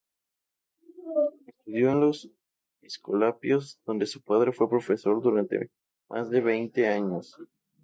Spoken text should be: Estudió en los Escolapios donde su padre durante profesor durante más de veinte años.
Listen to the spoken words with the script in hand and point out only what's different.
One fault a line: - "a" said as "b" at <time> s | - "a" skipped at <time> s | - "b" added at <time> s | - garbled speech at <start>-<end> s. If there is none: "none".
- "durante" said as "fue" at 4.5 s